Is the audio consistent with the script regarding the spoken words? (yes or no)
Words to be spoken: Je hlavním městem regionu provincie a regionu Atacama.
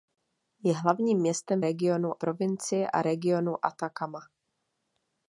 yes